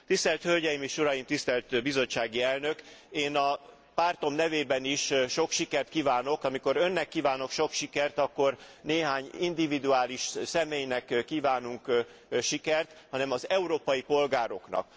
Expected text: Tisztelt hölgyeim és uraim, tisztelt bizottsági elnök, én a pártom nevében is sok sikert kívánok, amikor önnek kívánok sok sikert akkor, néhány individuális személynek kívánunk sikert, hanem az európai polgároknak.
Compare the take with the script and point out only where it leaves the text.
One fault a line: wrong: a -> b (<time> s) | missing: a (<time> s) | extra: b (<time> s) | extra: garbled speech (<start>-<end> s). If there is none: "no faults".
no faults